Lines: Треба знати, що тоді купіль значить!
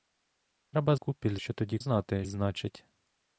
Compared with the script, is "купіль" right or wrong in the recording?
wrong